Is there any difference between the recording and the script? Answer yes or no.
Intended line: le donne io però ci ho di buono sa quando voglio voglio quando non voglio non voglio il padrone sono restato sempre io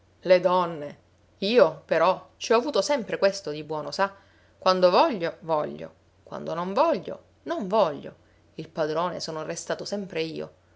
yes